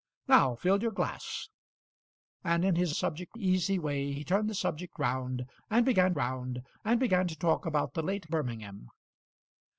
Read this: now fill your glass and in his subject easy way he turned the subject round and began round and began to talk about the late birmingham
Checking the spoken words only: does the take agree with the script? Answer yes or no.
yes